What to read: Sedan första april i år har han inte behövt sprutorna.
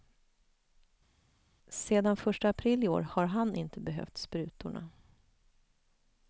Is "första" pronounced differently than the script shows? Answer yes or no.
no